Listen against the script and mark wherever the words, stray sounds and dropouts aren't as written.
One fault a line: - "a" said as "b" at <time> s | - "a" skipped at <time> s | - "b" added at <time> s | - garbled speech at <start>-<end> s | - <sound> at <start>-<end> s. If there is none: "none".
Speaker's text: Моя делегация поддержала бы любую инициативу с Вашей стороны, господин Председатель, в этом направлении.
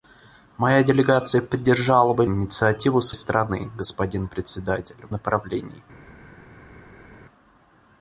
- "любую" skipped at 2.2 s
- "Вашей" skipped at 3.1 s
- "этом" skipped at 5.1 s